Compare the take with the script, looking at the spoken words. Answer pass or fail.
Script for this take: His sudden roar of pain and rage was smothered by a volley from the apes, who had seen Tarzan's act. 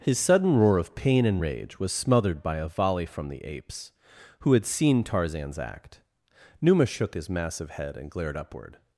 fail